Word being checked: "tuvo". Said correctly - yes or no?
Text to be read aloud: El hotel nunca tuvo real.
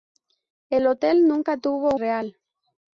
yes